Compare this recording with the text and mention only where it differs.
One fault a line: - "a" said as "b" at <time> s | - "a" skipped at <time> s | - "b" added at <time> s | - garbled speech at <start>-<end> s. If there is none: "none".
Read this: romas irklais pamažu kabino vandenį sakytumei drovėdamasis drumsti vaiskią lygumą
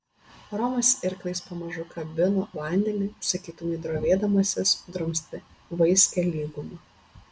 none